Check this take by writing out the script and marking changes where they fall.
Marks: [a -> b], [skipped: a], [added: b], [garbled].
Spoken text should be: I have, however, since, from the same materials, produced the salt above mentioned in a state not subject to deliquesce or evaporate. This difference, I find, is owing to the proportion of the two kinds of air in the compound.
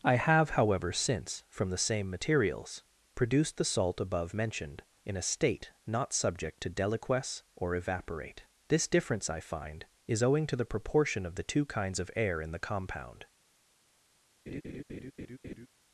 I have, however, since, from the same materials, produced the salt above mentioned in a state not subject to deliquesce or evaporate. This difference, I find, is owing to the proportion of the two kinds of air in the compound.